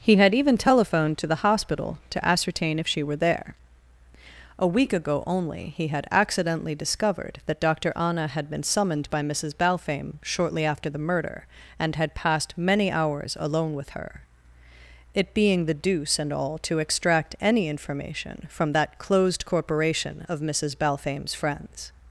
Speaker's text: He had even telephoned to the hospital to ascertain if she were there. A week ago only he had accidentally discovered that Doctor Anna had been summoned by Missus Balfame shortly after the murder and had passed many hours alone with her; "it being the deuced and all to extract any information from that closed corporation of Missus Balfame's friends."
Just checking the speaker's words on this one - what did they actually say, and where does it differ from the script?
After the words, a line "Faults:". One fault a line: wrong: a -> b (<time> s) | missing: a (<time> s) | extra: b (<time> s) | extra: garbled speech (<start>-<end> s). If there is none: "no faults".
He had even telephoned to the hospital to ascertain if she were there. A week ago only he had accidentally discovered that Doctor Anna had been summoned by Missus Balfame shortly after the murder and had passed many hours alone with her; "it being the deuce and all to extract any information from that closed corporation of Missus Balfame's friends."
Faults:
wrong: deuced -> deuce (15.8 s)